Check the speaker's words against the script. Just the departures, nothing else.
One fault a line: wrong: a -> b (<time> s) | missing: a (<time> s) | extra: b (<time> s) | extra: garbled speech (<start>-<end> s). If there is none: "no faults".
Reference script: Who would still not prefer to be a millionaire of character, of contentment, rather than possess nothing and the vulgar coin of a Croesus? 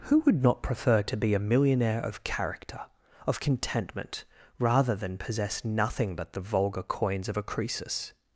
missing: still (0.4 s)
wrong: and -> but (6.2 s)
wrong: coin -> coins (6.8 s)